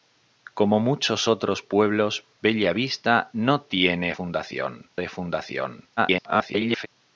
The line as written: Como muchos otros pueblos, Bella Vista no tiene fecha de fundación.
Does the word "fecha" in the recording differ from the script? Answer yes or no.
yes